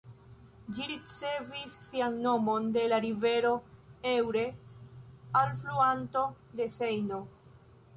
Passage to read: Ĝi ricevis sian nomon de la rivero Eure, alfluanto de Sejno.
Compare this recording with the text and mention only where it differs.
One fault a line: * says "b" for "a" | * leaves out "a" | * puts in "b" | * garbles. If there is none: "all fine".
all fine